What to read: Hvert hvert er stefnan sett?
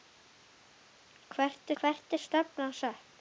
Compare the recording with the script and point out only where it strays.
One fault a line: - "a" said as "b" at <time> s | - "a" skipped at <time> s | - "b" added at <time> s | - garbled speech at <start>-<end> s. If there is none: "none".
none